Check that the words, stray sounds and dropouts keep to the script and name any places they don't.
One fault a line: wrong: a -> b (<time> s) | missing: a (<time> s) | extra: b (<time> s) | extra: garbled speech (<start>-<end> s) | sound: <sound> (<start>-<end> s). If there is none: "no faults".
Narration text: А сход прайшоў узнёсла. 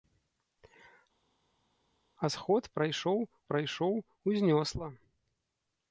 extra: прайшоў (3.5 s)